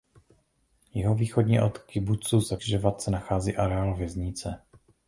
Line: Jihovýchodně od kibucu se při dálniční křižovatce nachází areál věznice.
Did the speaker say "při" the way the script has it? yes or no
no